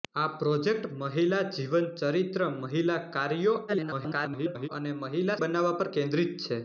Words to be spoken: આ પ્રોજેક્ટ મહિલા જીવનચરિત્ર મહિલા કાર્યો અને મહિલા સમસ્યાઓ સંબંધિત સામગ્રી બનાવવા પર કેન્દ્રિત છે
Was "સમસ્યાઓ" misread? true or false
true